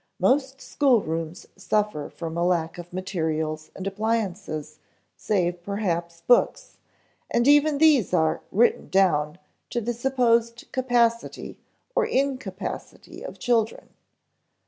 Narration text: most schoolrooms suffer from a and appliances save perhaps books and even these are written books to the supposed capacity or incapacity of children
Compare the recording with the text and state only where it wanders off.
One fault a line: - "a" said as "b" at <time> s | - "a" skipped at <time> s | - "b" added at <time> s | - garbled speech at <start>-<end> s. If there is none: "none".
- "lack of materials" added at 2.4 s
- "books" said as "down" at 8.9 s